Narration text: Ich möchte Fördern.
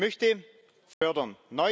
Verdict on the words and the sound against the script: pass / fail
fail